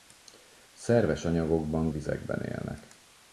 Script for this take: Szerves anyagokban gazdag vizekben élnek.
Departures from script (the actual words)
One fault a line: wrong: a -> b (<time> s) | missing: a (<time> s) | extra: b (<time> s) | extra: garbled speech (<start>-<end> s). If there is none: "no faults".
missing: gazdag (1.9 s)